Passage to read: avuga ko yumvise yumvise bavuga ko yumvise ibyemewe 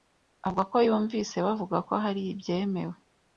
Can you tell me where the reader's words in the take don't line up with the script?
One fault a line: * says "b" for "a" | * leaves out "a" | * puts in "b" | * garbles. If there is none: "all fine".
* leaves out "yumvise"
* says "hari" for "yumvise"